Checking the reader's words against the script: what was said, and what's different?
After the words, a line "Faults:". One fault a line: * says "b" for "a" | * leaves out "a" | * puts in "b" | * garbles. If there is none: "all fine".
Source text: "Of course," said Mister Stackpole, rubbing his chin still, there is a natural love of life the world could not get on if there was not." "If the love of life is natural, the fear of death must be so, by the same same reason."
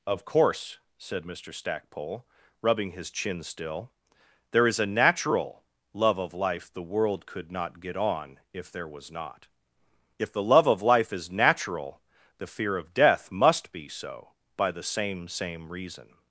"Of course," said Mister Stackpole, rubbing his chin still, there is a natural love of life the world could not get on if there was not." "If the love of life is natural, the fear of death must be so, by the same same reason."
Faults:
all fine